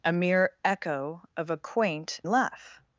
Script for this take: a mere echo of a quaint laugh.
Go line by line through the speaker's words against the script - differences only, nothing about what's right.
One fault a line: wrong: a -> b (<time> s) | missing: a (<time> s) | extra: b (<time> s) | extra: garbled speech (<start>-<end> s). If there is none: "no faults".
no faults